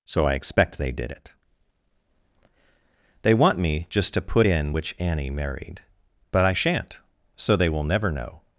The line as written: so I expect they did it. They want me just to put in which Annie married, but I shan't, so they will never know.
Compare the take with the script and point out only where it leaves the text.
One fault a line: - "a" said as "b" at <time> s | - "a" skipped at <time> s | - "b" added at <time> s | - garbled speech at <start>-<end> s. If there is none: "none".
none